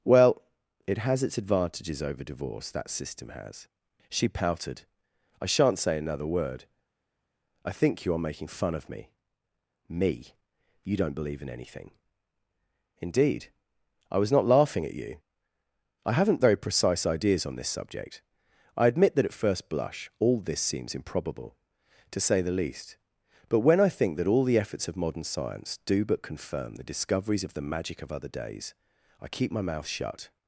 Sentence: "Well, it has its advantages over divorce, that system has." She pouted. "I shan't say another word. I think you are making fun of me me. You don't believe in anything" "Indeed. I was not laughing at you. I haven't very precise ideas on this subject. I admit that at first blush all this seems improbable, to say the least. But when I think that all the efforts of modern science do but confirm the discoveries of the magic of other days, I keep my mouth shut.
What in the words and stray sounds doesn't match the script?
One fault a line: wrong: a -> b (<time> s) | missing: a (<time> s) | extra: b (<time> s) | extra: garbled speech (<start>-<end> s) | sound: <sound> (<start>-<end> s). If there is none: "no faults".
no faults